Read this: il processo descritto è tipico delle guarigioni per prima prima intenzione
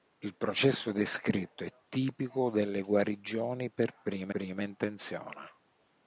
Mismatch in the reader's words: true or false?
false